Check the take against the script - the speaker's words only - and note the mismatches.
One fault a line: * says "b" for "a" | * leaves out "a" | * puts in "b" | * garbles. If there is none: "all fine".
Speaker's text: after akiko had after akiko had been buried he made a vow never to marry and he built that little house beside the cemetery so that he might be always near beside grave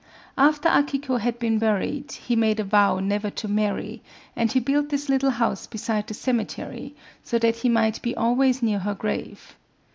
* leaves out "after akiko had"
* says "this" for "that"
* says "her" for "beside"